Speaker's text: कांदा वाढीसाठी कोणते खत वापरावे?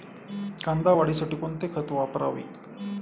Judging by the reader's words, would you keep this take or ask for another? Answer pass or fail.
pass